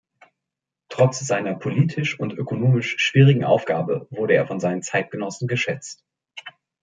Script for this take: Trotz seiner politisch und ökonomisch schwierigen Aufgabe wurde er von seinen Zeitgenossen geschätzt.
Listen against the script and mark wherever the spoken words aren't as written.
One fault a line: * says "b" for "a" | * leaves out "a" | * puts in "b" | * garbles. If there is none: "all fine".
all fine